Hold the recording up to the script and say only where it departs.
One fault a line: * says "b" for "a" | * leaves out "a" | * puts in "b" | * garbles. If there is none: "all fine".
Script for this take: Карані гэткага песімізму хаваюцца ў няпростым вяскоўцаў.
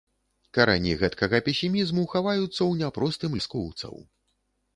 all fine